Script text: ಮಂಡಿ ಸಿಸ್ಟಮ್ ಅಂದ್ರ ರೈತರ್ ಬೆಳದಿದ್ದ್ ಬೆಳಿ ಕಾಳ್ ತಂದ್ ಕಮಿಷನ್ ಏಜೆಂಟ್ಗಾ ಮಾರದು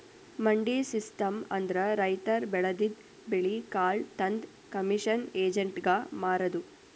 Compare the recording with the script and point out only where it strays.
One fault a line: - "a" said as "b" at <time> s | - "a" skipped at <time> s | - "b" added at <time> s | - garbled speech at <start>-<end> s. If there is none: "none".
none